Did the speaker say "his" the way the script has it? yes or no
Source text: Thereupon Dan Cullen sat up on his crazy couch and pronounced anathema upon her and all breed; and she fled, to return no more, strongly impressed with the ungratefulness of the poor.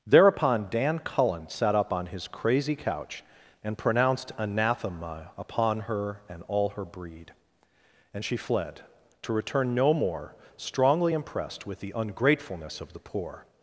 yes